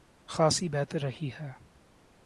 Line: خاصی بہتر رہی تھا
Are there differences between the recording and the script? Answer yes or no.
yes